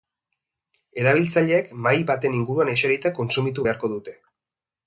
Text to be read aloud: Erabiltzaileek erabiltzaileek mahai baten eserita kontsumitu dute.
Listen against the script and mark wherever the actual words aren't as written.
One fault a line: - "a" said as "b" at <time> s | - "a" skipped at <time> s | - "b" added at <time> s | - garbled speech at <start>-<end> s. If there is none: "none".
- "erabiltzaileek" skipped at 1.7 s
- "inguruan" added at 2.4 s
- "beharko" added at 3.7 s